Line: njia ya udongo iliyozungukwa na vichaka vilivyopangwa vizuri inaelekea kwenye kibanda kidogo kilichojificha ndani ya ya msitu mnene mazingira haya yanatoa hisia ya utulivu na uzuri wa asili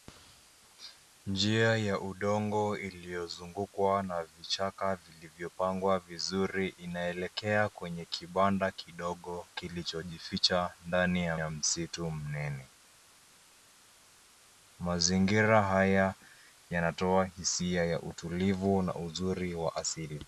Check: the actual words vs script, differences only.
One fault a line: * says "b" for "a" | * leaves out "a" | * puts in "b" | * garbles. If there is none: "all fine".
all fine